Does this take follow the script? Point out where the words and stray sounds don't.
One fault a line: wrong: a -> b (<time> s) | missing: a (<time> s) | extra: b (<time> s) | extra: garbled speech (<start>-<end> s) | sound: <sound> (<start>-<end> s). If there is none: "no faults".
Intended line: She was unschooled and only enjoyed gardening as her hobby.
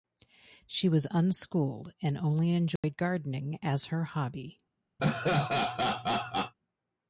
sound: dropout (2.8-2.8 s)
sound: laugh (5.0-6.5 s)